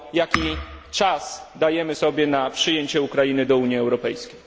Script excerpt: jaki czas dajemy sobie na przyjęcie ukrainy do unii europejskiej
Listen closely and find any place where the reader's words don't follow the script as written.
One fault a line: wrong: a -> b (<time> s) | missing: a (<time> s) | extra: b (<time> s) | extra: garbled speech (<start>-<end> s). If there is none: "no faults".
no faults